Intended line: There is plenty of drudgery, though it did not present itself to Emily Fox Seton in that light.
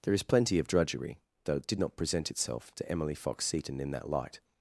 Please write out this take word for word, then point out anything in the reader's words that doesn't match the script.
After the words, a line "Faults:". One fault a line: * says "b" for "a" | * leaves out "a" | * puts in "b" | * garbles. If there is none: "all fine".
There is plenty of drudgery, though it did not present itself to Emily Fox Seton in that light.
Faults:
all fine